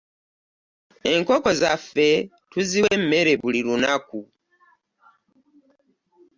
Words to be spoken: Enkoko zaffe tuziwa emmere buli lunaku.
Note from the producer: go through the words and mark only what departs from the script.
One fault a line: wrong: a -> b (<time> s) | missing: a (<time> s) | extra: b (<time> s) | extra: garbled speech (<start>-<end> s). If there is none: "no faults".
no faults